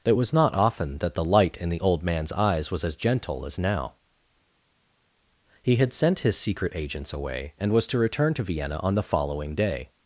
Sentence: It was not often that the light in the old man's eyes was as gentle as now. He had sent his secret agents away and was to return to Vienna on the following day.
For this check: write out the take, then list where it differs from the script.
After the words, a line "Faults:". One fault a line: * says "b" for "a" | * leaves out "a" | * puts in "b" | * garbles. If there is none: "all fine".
It was not often that the light in the old man's eyes was as gentle as now. He had sent his secret agents away and was to return to Vienna on the following day.
Faults:
all fine